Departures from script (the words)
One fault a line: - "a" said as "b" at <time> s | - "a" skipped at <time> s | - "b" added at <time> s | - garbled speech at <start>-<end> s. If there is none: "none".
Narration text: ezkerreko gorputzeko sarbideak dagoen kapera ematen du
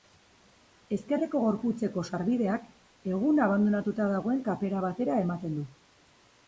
- "egun abandonatuta" added at 3.1 s
- "batera" added at 4.9 s